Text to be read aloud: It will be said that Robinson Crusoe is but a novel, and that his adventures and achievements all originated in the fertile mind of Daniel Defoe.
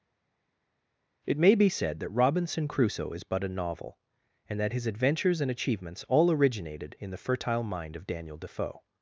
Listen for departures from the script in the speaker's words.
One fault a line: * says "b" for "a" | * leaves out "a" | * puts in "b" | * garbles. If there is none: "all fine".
* says "may" for "will"